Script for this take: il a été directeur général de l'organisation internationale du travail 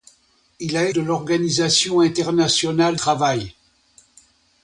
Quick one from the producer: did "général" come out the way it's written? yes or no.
no